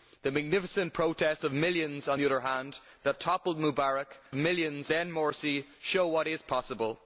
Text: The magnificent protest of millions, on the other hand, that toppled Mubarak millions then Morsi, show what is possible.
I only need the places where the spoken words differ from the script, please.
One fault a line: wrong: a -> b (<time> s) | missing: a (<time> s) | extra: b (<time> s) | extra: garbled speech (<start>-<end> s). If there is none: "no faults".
no faults